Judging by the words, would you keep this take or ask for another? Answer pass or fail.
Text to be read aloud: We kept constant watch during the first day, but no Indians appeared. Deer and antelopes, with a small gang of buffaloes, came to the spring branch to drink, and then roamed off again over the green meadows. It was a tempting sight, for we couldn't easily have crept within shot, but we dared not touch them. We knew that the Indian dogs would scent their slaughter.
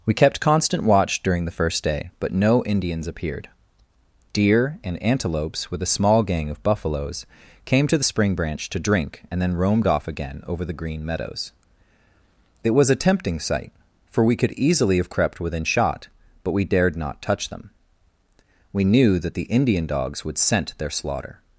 fail